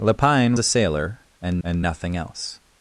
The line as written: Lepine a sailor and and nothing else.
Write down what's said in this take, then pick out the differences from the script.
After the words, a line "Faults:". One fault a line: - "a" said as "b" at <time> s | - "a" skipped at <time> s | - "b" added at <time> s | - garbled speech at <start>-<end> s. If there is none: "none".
Lepine a sailor and and nothing else.
Faults:
none